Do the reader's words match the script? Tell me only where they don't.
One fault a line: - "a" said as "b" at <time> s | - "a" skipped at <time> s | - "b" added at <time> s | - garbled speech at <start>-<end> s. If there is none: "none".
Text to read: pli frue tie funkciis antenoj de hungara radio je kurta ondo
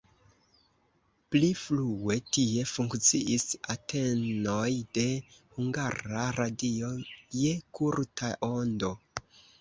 none